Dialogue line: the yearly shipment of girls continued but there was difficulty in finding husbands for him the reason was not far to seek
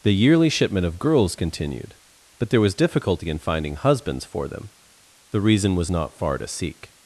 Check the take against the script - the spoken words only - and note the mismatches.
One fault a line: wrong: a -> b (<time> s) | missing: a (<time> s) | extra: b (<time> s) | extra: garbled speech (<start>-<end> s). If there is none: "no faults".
wrong: him -> them (4.5 s)